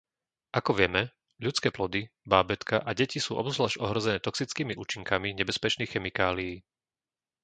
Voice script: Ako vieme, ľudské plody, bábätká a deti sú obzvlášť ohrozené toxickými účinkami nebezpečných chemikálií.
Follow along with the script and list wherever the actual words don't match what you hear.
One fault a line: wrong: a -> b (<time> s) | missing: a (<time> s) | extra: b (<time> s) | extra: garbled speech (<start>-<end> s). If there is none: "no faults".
no faults